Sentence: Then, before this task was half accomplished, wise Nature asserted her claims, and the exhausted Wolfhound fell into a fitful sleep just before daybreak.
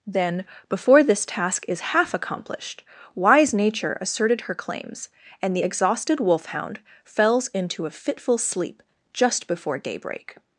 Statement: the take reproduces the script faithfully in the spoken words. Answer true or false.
false